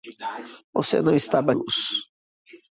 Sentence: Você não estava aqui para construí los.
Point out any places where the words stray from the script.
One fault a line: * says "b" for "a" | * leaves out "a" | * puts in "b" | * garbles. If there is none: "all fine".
* leaves out "aqui para construí"